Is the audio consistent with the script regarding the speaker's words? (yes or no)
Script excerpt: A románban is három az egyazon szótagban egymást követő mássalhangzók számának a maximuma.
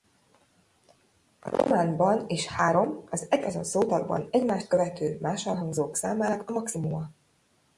yes